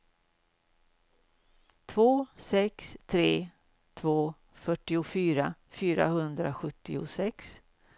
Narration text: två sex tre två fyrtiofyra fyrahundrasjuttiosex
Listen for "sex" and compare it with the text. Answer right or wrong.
right